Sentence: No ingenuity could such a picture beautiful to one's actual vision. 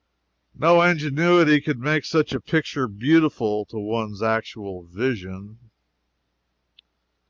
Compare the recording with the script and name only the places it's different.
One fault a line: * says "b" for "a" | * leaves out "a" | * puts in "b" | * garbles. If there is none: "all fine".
* puts in "make"